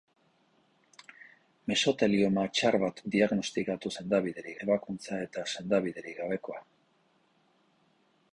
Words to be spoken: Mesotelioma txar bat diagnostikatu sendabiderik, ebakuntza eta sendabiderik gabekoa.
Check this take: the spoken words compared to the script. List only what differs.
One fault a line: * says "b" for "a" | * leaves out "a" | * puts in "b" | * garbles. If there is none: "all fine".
all fine